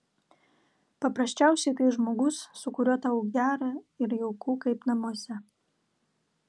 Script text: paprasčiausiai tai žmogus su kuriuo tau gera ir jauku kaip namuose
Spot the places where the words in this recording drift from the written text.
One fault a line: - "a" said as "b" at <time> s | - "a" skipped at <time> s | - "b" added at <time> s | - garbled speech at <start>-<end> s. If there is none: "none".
none